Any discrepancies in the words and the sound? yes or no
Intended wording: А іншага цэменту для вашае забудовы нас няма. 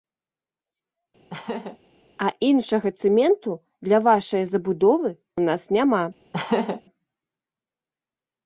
yes